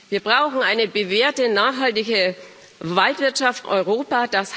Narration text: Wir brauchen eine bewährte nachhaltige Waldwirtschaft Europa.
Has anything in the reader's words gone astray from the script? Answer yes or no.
no